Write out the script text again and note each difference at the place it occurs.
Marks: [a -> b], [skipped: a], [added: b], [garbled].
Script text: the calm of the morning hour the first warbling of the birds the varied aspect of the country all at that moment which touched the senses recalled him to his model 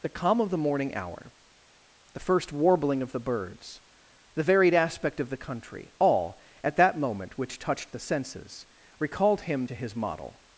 the calm of the morning hour the first warbling of the birds the varied aspect of the country all at that moment which touched the senses recalled him to his model